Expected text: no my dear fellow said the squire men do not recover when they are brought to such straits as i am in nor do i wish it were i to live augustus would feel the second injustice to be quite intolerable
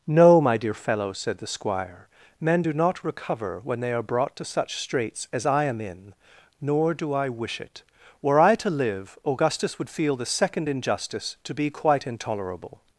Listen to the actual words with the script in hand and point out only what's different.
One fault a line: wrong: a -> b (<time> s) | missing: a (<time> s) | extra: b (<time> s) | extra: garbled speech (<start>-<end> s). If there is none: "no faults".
no faults